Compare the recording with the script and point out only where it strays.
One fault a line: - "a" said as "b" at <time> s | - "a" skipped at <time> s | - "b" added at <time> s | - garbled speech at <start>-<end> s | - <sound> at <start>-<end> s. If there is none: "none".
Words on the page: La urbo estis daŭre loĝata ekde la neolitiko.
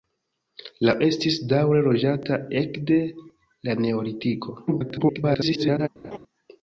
- "urbo" skipped at 0.9 s
- garbled speech at 4.7-5.9 s
- laugh at 6.0-6.2 s